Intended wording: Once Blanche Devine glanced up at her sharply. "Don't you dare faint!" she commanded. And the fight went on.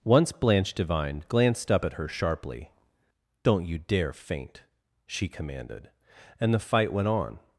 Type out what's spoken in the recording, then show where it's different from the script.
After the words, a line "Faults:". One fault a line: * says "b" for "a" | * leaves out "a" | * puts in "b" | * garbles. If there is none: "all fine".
Once Blanche Devine glanced up at her sharply. "Don't you dare faint!" she commanded. And the fight went on.
Faults:
all fine